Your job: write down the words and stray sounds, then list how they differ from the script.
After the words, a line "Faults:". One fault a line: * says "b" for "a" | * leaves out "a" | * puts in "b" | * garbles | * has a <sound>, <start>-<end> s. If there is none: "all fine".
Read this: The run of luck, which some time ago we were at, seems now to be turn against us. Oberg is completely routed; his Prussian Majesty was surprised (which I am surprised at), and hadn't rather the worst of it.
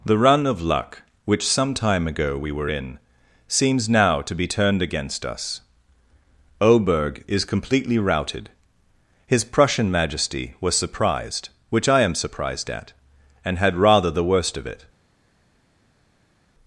The run of luck, which some time ago we were in, seems now to be turned against us. Oberg is completely routed; his Prussian Majesty was surprised (which I am surprised at), and had rather the worst of it.
Faults:
* says "in" for "at"
* says "turned" for "turn"
* says "had" for "hadn't"